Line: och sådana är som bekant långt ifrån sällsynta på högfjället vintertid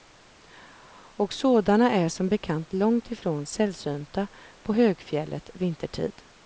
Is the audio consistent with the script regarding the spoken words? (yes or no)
yes